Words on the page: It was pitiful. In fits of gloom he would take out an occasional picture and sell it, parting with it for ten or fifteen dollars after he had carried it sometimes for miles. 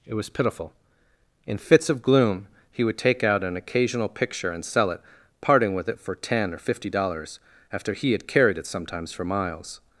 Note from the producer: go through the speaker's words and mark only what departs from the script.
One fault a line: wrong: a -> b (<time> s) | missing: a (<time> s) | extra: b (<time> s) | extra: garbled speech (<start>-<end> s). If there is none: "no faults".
wrong: fifteen -> fifty (6.6 s)